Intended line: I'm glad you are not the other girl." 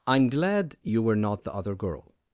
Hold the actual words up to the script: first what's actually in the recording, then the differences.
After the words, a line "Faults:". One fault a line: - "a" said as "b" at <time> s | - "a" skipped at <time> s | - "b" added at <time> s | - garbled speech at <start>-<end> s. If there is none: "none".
I'm glad you were not the other girl."
Faults:
- "are" said as "were" at 1.0 s